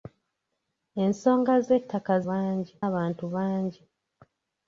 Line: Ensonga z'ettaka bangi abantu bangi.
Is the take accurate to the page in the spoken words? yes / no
yes